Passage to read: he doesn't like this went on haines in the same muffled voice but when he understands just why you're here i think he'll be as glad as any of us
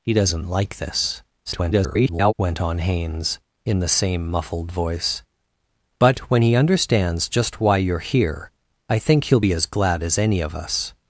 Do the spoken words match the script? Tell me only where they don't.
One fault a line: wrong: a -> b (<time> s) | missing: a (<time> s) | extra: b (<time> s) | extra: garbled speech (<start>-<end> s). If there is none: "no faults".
extra: garbled speech (1.5-2.3 s)